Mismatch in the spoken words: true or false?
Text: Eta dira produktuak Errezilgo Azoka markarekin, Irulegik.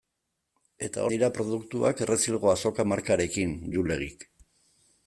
false